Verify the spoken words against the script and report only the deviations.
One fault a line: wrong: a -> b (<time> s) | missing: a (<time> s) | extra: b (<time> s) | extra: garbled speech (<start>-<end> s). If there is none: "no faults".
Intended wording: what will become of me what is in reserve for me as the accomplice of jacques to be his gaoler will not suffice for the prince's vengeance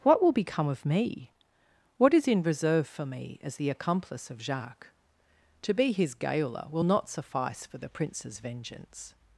no faults